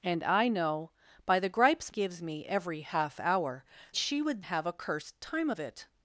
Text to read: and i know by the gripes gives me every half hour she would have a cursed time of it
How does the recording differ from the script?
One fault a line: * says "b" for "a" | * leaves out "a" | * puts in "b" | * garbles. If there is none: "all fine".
all fine